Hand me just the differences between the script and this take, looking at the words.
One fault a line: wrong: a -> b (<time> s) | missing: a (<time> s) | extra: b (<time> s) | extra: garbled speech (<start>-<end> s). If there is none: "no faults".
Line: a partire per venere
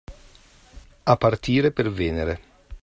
no faults